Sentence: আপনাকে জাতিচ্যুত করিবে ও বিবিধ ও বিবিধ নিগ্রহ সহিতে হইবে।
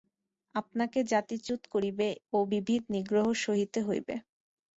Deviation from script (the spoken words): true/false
true